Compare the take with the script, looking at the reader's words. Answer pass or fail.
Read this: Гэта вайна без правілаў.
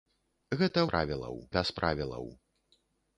fail